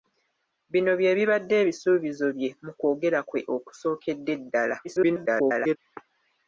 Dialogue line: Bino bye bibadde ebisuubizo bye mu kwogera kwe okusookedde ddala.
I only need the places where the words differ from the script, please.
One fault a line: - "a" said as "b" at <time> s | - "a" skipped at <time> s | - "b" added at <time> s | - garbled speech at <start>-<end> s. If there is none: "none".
- garbled speech at 4.8-5.8 s